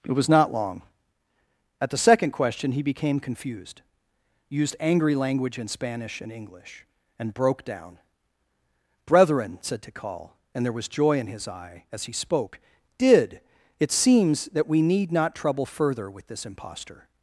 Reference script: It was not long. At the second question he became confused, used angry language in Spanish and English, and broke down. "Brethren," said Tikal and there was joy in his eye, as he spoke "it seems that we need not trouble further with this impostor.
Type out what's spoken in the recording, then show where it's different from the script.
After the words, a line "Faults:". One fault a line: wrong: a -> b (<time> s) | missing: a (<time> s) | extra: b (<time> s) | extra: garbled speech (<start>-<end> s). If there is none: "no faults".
It was not long. At the second question he became confused, used angry language in Spanish and English, and broke down. "Brethren," said Tikal and there was joy in his eye, as he spoke did "it seems that we need not trouble further with this impostor.
Faults:
extra: did (13.0 s)